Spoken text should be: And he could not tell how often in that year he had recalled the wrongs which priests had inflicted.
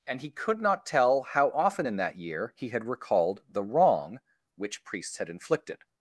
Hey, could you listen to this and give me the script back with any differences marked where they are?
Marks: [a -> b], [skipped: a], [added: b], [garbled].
And he could not tell how often in that year he had recalled the [wrongs -> wrong] which priests had inflicted.